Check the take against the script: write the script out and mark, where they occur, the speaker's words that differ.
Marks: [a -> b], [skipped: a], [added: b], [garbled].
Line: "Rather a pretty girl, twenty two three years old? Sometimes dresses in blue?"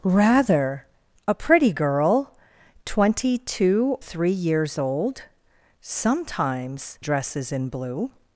"Rather a pretty girl, twenty two three years old? Sometimes dresses in blue?"